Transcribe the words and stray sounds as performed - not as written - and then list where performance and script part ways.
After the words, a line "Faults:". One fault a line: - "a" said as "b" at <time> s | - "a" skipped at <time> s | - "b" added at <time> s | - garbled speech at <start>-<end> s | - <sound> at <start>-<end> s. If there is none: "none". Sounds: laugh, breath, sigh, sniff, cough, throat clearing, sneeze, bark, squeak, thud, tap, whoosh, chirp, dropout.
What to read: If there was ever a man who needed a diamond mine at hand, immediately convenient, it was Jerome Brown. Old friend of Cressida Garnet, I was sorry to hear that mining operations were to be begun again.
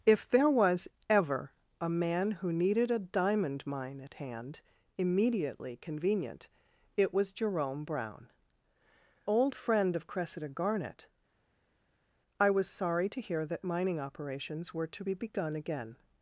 If there was ever a man who needed a diamond mine at hand, immediately convenient, it was Jerome Brown. Old friend of Cressida Garnet, I was sorry to hear that mining operations were to be begun again.
Faults:
none